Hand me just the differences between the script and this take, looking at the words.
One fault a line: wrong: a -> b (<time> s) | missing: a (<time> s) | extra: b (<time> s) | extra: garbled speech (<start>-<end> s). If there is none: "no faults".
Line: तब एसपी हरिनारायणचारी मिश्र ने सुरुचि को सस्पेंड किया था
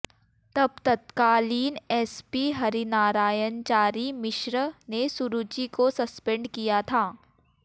extra: तत्कालीन (0.8 s)